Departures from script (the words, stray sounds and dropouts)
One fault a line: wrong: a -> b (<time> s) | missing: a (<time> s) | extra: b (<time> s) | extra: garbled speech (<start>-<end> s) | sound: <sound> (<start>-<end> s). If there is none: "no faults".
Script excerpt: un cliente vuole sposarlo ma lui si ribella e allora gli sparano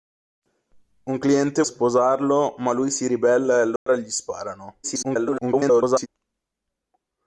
missing: vuole (1.6 s)
sound: dropout (3.8-3.9 s)
extra: garbled speech (4.8-6.1 s)